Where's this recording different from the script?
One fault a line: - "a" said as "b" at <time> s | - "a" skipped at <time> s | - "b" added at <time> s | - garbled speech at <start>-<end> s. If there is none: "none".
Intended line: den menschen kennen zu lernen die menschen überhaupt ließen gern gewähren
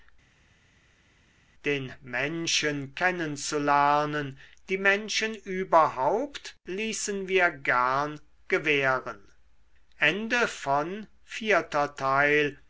- "wir" added at 7.3 s